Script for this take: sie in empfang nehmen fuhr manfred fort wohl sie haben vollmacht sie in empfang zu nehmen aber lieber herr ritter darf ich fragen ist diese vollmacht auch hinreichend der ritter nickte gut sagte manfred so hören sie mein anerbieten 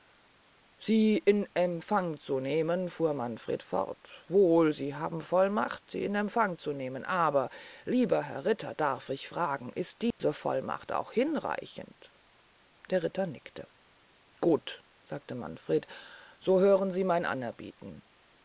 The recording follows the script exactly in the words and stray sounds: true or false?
false